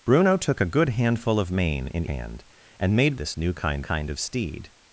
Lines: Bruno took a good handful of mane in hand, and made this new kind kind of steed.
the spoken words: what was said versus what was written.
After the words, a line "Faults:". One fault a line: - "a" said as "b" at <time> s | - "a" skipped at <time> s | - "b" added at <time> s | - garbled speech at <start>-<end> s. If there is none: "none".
Bruno took a good handful of mane in hand, and made this new kind kind of steed.
Faults:
none